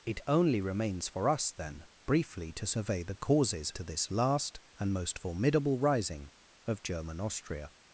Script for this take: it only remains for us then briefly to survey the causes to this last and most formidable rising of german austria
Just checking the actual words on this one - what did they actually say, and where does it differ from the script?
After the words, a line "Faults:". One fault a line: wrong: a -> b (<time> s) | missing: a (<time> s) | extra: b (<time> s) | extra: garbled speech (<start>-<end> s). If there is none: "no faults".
it only remains for us then briefly to survey the causes to this last and most formidable rising of german austria
Faults:
no faults